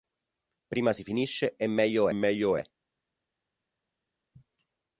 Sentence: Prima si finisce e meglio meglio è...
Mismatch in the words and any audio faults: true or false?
false